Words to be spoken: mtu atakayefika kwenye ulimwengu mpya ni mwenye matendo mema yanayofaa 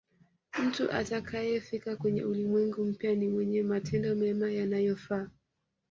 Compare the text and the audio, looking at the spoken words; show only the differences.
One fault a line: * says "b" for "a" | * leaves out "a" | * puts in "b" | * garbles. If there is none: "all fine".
all fine